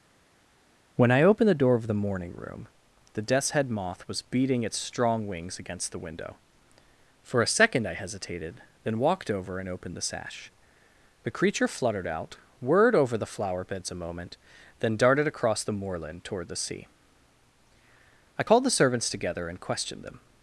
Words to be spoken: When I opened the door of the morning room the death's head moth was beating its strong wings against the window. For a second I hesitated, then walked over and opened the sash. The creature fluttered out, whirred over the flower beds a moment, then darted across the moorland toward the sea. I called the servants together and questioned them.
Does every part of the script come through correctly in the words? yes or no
yes